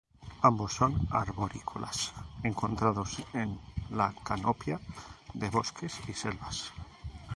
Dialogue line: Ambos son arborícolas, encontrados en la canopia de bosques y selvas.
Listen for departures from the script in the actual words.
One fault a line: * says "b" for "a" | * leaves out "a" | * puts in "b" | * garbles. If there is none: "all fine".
all fine